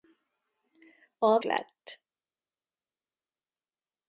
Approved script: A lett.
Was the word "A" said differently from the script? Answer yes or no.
no